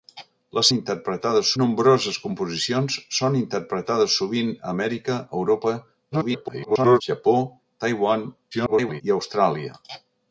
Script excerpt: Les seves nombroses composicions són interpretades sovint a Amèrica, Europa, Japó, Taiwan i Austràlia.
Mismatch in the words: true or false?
true